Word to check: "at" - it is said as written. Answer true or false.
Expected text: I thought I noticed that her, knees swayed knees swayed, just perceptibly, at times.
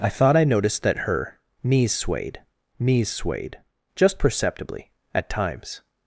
true